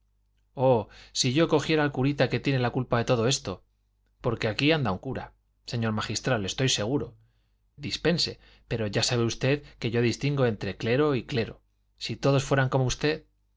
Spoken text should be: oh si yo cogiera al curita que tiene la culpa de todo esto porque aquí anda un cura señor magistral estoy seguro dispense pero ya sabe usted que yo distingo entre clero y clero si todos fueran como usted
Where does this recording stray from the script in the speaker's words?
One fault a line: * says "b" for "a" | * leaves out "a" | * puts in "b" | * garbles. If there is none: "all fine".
all fine